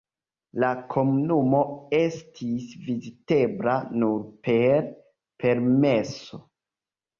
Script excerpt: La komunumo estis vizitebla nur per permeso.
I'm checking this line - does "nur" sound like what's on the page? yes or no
yes